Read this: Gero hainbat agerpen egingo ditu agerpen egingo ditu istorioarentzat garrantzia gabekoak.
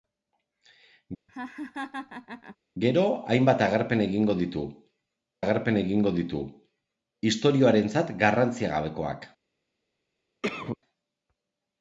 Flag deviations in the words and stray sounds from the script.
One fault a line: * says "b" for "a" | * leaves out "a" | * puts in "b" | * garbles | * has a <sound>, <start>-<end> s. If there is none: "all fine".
* has a laugh, 1.3-2.6 s
* has a cough, 10.4-10.8 s